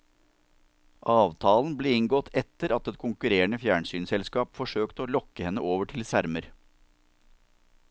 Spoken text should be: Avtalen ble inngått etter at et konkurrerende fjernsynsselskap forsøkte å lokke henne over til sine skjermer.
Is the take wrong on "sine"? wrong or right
wrong